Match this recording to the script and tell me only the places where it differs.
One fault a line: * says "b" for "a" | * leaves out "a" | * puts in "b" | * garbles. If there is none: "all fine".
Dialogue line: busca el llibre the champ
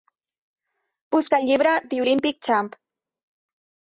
* puts in "olympic"